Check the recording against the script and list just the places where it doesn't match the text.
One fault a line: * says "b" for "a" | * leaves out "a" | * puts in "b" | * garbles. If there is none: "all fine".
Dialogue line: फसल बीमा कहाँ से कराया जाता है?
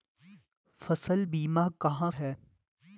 * leaves out "से कराया जाता"